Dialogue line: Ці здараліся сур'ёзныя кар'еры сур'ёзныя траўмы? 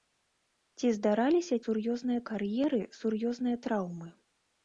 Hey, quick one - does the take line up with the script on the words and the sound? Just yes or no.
yes